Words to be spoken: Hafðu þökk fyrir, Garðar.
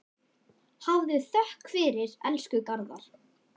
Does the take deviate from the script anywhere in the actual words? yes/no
yes